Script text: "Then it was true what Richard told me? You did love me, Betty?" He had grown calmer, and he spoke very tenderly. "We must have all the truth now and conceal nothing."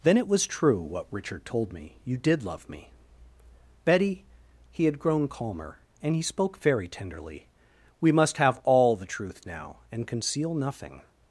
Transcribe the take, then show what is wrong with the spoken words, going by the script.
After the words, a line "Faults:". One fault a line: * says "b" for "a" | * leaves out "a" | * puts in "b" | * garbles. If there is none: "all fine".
"Then it was true what Richard told me? You did love me, Betty?" He had grown calmer, and he spoke very tenderly. "We must have all the truth now and conceal nothing."
Faults:
all fine